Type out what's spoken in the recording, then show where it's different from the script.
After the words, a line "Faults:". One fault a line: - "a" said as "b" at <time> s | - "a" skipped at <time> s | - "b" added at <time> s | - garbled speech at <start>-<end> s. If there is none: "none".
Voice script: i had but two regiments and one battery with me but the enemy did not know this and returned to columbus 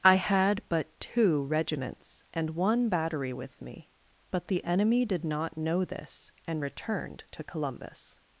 i had but two regiments and one battery with me but the enemy did not know this and returned to columbus
Faults:
none